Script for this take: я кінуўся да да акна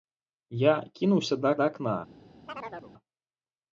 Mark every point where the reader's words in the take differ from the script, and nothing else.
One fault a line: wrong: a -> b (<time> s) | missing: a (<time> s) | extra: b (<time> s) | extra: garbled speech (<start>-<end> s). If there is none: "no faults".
no faults